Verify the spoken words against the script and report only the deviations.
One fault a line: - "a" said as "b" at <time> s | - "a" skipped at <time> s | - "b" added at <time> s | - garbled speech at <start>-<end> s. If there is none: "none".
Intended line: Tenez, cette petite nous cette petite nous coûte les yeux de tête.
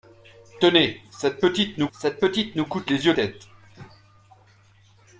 none